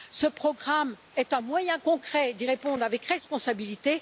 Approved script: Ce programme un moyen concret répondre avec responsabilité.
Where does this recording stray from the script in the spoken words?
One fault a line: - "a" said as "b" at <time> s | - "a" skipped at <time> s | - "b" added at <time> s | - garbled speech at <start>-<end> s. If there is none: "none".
- "est" added at 1.1 s
- "d'y" added at 2.3 s